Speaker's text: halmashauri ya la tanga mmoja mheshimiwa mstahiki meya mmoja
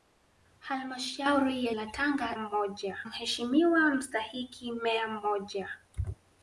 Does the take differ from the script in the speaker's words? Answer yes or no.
no